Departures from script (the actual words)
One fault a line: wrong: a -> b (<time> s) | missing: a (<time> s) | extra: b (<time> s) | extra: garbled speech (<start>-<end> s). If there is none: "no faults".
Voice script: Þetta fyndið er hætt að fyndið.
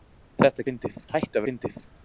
no faults